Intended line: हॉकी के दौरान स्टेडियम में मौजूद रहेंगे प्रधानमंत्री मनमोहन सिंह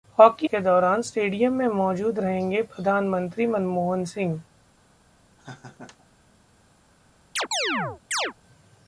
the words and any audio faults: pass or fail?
fail